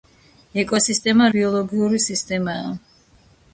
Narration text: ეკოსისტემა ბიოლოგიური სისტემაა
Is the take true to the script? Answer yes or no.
yes